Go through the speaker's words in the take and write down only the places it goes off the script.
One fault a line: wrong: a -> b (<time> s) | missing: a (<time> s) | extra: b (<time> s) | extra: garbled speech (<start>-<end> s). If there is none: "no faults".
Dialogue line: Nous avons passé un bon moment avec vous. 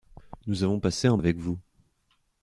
missing: bon moment (1.2 s)